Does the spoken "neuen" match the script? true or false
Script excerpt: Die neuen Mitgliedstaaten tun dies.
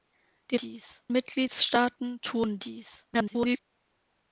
false